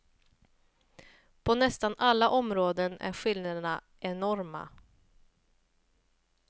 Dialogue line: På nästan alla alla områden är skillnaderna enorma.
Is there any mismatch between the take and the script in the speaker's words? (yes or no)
yes